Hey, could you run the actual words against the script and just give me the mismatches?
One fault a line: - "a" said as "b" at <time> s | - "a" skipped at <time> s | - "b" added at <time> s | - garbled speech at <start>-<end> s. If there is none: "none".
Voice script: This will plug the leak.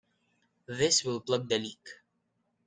none